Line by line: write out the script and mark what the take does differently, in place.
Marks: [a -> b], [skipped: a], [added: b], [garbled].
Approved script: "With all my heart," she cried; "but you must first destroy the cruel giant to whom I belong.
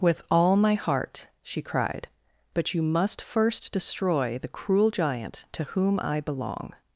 "With all my heart," she cried; "but you must first destroy the cruel giant to whom I belong.